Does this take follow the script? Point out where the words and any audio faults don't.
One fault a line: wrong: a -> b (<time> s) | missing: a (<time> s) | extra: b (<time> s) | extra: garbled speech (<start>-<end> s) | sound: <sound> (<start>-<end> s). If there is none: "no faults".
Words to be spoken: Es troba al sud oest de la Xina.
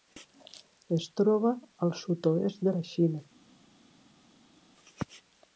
no faults